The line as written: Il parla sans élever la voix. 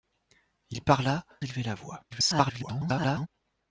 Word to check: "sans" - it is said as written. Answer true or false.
false